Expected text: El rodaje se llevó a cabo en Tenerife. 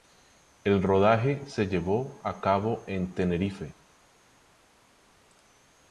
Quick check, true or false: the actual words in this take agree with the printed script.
true